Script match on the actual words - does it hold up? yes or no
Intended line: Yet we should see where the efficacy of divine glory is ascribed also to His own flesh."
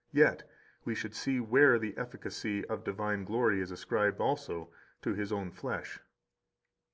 yes